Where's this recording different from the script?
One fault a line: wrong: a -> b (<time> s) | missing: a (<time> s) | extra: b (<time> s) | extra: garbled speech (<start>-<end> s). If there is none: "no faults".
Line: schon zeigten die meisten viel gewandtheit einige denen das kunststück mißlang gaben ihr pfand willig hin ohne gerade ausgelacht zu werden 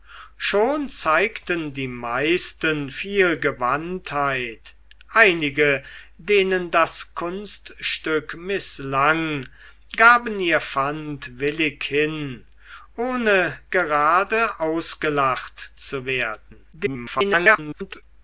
extra: garbled speech (16.7-18.0 s)